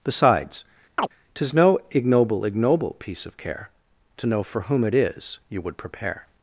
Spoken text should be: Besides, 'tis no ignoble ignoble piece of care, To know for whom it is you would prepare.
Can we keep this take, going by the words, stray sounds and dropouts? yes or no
no